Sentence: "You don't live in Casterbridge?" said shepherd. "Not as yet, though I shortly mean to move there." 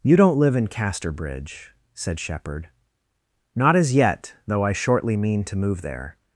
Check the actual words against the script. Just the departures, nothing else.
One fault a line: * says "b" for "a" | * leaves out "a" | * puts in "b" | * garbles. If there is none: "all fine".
all fine